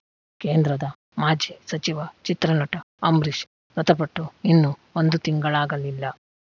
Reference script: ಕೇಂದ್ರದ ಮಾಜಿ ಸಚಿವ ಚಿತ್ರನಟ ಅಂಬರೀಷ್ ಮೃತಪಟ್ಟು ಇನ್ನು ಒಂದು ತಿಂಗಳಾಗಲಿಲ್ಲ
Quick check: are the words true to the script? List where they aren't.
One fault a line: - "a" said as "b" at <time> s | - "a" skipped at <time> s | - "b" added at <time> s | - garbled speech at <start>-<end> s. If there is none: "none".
none